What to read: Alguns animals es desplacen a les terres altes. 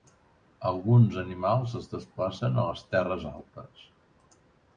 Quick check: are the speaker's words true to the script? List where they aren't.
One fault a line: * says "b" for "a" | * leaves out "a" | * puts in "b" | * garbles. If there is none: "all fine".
all fine